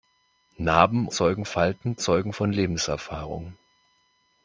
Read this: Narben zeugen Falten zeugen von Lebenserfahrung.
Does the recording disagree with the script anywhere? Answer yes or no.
no